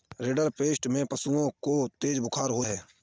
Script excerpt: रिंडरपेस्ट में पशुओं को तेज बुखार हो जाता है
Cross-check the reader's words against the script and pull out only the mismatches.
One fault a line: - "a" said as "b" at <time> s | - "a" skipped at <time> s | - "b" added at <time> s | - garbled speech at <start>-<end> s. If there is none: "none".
- "जाता" skipped at 2.6 s